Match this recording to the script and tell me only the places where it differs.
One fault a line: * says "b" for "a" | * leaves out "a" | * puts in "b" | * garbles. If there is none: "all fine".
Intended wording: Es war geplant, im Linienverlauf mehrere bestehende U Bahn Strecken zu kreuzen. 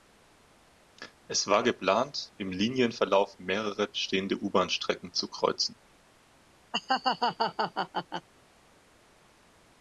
all fine